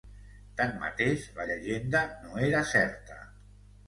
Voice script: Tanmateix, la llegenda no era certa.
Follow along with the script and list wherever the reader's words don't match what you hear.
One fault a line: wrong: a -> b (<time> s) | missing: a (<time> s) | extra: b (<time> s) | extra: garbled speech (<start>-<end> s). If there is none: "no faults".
no faults